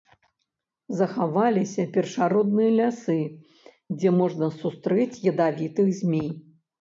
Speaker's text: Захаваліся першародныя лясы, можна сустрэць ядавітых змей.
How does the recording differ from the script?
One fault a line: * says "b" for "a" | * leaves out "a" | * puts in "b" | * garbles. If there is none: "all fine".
* puts in "дзе"